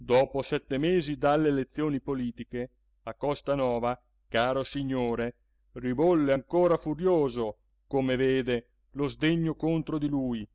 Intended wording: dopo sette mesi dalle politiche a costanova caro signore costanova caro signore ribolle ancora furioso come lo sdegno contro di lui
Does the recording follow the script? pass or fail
fail